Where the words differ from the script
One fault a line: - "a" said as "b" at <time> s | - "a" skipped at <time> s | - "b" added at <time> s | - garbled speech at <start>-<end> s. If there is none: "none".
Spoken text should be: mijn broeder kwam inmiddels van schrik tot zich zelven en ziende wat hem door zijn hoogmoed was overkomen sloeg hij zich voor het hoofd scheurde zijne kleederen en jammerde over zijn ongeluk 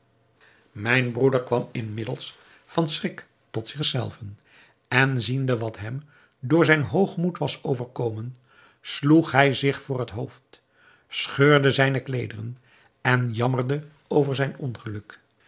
none